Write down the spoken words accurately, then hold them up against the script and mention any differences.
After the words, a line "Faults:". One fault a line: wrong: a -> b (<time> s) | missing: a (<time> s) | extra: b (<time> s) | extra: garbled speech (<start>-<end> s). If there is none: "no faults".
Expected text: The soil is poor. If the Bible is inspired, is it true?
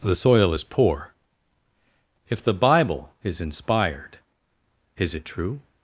The soil is poor. If the Bible is inspired, is it true?
Faults:
no faults